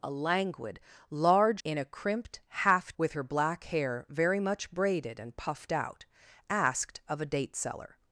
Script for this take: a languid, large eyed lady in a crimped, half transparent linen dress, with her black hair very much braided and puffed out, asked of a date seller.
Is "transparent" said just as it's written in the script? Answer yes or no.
no